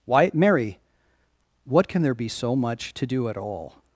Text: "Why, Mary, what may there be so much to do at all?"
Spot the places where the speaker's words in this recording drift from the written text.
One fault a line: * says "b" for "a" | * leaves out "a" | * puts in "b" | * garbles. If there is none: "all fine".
* says "can" for "may"